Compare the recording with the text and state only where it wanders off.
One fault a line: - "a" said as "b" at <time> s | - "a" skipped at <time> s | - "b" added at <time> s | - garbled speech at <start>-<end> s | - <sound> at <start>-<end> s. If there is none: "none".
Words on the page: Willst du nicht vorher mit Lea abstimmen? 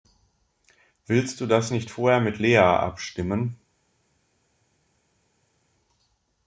- "das" added at 1.4 s